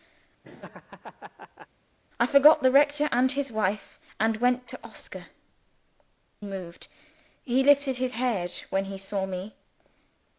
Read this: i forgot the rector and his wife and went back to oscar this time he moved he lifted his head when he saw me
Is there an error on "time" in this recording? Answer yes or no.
yes